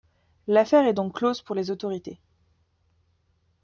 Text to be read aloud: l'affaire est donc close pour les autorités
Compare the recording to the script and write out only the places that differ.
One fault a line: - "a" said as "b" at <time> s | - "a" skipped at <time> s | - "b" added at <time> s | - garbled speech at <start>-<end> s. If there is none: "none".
none